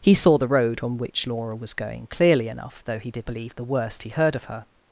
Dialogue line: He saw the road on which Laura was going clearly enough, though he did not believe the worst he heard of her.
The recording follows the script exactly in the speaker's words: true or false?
false